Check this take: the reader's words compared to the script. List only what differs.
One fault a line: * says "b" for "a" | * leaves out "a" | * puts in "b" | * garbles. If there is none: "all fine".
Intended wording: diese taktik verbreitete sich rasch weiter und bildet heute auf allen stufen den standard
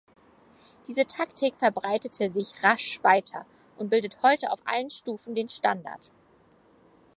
all fine